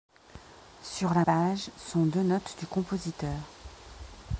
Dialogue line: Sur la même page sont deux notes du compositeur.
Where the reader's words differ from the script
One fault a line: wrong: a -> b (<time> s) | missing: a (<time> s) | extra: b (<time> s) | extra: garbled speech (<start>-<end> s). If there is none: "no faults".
missing: même (1.2 s)